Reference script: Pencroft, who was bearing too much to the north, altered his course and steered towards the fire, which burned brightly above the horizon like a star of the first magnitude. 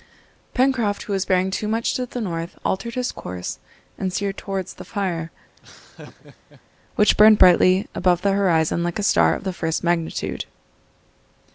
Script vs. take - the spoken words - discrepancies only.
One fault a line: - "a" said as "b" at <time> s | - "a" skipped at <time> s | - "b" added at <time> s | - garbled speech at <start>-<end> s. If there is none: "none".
none